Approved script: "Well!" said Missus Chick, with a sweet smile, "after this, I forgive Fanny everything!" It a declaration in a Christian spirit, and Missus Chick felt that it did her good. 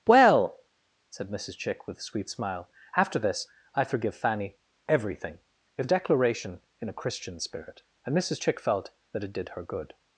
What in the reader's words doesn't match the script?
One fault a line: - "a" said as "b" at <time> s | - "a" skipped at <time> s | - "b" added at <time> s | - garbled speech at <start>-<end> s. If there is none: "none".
none